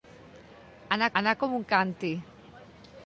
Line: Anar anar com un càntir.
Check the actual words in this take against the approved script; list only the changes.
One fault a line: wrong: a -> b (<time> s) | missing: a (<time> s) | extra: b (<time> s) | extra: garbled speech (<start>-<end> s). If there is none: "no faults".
no faults